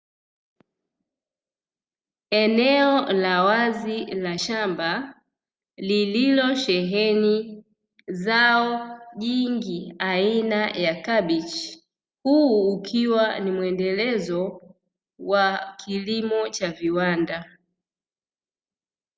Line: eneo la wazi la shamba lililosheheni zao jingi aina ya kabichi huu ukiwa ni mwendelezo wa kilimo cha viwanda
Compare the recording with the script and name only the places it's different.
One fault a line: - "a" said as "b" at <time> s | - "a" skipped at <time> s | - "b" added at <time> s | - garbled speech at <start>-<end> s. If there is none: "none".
none